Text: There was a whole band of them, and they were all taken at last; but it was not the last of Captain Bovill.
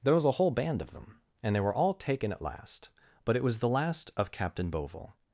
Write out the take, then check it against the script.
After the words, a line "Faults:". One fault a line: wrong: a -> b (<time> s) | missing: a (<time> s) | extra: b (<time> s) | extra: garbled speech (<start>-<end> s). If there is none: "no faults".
There was a whole band of them, and they were all taken at last; but it was the last of Captain Bovill.
Faults:
missing: not (3.6 s)